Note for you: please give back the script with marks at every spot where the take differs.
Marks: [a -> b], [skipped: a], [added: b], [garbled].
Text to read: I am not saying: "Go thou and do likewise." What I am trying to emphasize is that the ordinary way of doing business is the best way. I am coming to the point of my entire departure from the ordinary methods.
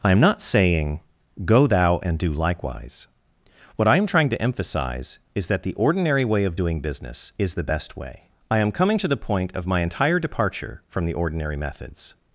I am not saying: "Go thou and do likewise." What I am trying to emphasize is that the ordinary way of doing business is the best way. I am coming to the point of my entire departure from the ordinary methods.